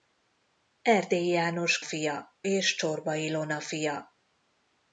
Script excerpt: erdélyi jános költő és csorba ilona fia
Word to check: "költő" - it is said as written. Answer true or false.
false